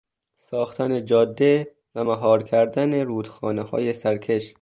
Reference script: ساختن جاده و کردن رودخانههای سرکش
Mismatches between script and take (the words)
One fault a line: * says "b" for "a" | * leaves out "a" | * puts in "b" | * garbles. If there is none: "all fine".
* puts in "مهار"